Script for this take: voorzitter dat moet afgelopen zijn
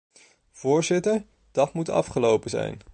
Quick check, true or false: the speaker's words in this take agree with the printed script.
true